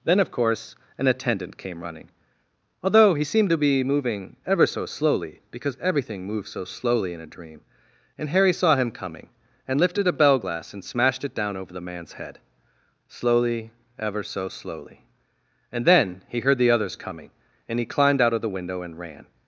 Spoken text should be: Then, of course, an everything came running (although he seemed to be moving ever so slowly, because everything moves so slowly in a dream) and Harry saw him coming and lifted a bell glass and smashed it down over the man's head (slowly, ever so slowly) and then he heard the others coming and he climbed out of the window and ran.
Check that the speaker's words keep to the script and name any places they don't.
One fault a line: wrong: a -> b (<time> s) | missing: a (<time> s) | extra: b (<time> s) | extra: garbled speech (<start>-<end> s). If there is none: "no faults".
wrong: everything -> attendant (1.1 s)